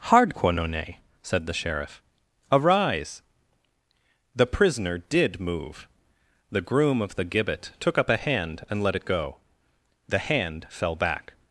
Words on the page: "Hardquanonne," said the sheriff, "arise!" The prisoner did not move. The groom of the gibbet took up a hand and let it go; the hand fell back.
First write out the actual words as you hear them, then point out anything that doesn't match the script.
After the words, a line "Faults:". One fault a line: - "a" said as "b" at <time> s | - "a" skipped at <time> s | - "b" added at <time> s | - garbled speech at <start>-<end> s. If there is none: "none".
"Hardquanonne," said the sheriff, "arise!" The prisoner did move. The groom of the gibbet took up a hand and let it go; the hand fell back.
Faults:
- "not" skipped at 5.4 s